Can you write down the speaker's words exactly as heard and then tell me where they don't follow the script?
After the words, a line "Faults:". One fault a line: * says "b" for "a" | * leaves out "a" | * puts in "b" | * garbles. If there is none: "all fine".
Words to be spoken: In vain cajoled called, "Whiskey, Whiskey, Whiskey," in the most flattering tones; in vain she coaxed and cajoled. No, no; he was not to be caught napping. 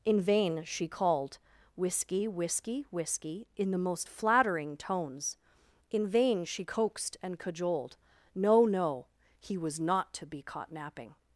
In vain she called, "Whiskey, Whiskey, Whiskey," in the most flattering tones; in vain she coaxed and cajoled. No, no; he was not to be caught napping.
Faults:
* says "she" for "cajoled"